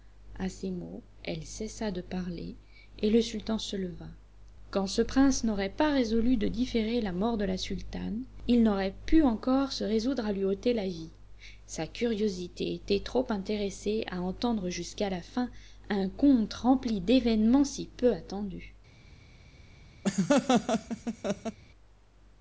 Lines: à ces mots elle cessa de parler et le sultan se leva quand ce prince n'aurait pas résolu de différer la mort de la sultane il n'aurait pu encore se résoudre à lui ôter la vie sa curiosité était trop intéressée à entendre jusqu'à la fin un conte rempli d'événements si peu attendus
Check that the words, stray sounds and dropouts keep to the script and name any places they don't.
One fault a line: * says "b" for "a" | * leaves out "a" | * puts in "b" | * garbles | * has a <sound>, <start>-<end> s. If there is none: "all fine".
* has a laugh, 20.0-21.6 s